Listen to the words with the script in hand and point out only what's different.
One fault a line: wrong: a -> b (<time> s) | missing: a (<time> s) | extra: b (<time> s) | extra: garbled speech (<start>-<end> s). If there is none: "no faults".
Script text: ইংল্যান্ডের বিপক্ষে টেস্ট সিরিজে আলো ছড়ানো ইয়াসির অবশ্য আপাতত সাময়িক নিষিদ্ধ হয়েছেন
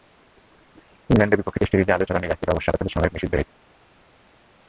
no faults